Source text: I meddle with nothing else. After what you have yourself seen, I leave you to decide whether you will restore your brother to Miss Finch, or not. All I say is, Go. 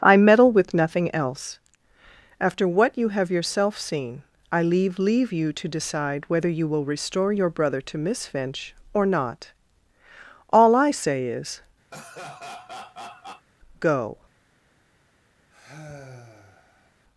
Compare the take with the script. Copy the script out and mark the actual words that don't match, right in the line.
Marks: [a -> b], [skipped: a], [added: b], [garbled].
I meddle with nothing else. After what you have yourself seen, I leave [added: leave] you to decide whether you will restore your brother to Miss Finch, or not. All I say is, Go.